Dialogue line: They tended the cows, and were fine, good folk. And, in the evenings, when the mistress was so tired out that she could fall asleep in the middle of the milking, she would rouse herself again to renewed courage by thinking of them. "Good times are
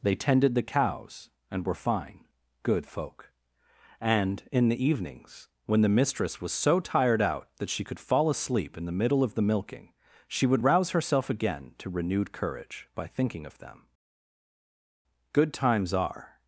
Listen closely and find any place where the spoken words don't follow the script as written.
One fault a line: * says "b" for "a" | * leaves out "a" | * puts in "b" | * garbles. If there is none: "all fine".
all fine